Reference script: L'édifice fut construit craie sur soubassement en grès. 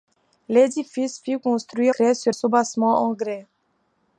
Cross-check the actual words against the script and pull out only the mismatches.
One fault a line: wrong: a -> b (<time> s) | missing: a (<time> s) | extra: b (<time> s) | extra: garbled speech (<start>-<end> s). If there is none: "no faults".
no faults